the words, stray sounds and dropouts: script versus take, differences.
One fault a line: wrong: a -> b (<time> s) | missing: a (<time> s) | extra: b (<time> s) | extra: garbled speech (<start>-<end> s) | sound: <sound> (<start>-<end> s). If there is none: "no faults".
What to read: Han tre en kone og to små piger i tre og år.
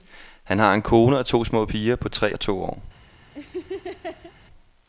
wrong: tre -> har (0.6 s)
wrong: i -> på (2.0 s)
extra: to (2.4 s)
sound: laugh (3.3-4.3 s)